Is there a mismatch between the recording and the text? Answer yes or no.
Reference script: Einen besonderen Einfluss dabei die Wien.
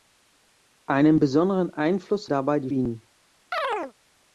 no